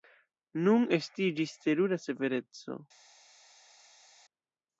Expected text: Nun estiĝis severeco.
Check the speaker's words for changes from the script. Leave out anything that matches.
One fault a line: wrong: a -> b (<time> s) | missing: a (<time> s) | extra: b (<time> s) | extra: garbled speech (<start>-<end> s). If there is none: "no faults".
extra: terura (1.7 s)